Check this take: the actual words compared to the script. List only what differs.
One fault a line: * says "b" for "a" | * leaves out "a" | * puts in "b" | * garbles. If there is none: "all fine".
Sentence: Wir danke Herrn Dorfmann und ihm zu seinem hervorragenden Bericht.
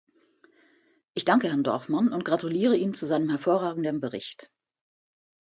* says "Ich" for "Wir"
* puts in "gratuliere"